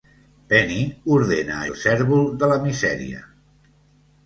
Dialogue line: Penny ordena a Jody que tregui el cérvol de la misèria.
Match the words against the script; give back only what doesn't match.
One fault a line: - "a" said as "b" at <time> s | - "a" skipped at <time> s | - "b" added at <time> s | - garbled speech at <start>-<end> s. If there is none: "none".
- "Jody que tregui" skipped at 1.7 s